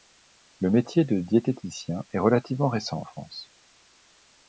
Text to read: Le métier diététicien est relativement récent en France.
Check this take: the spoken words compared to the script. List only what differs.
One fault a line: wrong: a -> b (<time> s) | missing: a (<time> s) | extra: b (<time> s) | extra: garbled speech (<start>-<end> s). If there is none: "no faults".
extra: de (1.1 s)